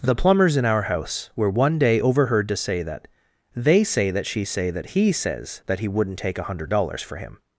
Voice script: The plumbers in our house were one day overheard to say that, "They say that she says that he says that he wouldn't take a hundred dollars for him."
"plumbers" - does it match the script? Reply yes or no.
yes